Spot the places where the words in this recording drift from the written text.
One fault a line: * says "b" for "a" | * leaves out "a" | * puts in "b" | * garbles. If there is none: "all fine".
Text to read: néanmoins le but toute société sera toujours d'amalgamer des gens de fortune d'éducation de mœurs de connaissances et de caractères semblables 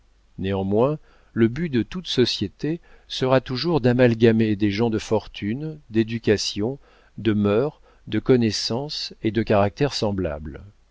* puts in "de"